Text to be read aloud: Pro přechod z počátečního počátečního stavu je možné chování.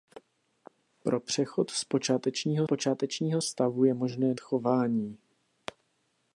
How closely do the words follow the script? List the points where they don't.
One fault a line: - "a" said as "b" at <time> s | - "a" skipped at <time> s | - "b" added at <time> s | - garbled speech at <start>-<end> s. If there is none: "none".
none